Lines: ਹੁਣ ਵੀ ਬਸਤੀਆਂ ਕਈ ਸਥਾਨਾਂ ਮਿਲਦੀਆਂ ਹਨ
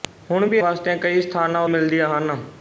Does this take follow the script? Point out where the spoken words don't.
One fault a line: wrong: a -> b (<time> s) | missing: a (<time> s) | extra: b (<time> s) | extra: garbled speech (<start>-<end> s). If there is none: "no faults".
no faults